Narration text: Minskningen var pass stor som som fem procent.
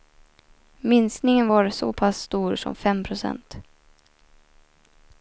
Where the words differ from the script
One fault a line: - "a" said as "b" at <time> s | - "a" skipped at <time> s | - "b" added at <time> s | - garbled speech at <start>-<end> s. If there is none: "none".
- "så" added at 1.7 s
- "som" skipped at 2.7 s